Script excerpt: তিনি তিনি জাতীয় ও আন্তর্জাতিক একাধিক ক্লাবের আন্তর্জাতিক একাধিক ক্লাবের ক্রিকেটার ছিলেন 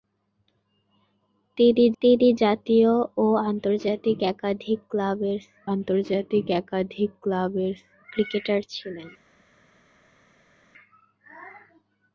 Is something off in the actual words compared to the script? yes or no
no